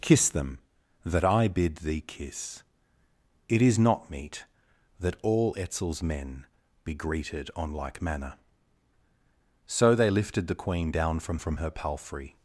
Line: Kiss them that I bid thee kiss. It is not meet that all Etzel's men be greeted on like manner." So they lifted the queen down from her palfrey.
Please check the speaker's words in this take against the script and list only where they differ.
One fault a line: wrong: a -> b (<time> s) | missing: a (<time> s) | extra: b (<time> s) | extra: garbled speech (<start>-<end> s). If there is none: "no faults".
extra: from (11.4 s)